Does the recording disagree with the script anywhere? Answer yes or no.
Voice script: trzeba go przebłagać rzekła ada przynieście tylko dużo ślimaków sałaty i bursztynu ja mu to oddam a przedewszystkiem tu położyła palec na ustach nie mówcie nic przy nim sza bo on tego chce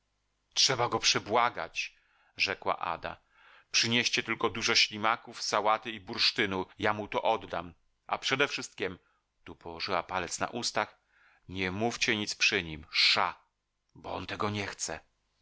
yes